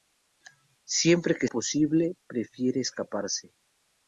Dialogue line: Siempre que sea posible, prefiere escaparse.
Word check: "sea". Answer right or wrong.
wrong